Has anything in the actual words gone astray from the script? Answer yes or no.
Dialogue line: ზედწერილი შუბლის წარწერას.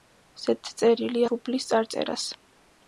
no